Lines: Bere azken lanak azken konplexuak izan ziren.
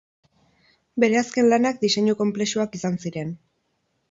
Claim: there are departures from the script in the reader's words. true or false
true